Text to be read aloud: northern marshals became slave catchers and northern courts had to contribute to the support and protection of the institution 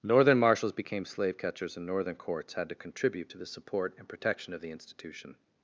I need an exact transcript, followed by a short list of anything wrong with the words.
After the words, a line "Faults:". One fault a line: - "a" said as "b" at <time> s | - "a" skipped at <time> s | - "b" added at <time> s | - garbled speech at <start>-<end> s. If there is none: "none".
northern marshals became slave catchers and northern courts had to contribute to the support and protection of the institution
Faults:
none